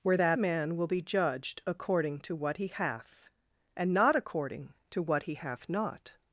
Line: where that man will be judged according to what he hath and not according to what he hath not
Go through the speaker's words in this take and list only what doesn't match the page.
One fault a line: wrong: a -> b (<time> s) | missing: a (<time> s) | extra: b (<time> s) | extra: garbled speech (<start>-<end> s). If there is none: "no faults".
no faults